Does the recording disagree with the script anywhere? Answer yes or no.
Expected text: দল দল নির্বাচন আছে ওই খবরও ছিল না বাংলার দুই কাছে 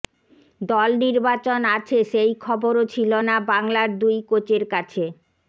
yes